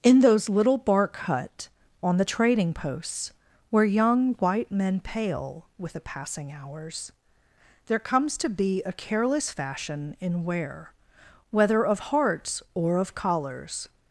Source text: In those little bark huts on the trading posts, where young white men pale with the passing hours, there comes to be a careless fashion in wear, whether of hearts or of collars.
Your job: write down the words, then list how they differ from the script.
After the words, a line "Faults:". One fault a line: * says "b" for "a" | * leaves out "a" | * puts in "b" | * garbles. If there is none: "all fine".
In those little bark hut on the trading posts, where young white men pale with the passing hours, there comes to be a careless fashion in wear, whether of hearts or of collars.
Faults:
* says "hut" for "huts"